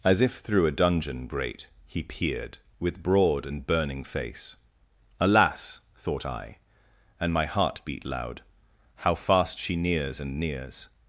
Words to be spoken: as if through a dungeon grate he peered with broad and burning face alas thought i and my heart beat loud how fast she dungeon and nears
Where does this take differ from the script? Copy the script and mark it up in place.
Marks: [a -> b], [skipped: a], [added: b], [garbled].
as if through a dungeon grate he peered with broad and burning face alas thought i and my heart beat loud how fast she [dungeon -> nears] and nears